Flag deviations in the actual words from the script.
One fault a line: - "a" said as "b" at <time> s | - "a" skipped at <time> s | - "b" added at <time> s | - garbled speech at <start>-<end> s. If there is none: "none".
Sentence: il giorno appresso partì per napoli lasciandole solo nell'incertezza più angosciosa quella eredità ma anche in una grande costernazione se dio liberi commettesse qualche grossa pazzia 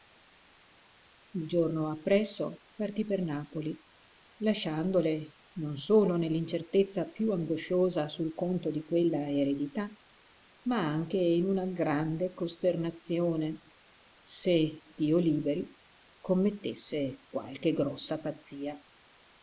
- "non" added at 5.6 s
- "sul conto di" added at 8.1 s